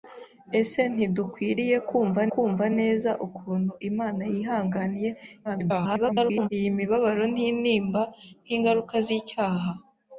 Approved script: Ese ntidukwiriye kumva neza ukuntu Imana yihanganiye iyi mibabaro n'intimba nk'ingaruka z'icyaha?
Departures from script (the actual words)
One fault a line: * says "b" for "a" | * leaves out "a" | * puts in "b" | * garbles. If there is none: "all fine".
* puts in "kumva"
* garbles